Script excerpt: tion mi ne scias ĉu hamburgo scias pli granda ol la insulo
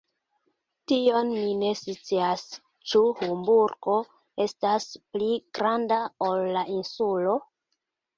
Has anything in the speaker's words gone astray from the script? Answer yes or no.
yes